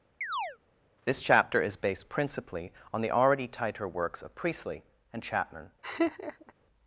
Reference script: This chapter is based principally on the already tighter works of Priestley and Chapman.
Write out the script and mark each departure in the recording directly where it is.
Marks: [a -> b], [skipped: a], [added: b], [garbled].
This chapter is based principally on the already tighter works of Priestley and Chapman.